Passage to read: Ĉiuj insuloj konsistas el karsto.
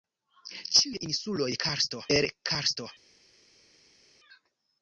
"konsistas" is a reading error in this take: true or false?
true